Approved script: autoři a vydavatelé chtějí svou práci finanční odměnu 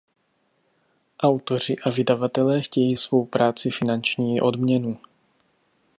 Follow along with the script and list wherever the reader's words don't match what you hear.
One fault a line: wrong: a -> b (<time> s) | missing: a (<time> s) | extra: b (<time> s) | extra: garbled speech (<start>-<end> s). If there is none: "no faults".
no faults